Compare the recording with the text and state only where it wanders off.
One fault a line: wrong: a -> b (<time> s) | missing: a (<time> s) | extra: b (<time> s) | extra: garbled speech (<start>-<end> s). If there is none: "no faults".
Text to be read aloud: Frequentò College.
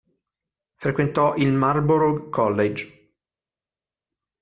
extra: il Marlborough (1.3 s)